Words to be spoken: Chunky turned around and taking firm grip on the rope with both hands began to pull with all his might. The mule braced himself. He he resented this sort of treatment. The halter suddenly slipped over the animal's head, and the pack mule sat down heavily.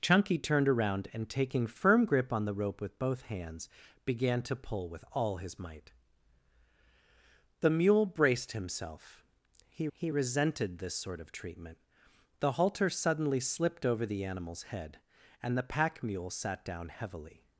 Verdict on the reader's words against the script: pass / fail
pass